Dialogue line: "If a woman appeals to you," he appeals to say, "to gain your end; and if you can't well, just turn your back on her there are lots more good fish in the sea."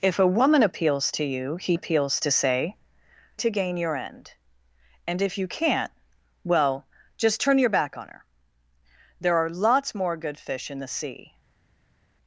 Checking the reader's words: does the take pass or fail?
pass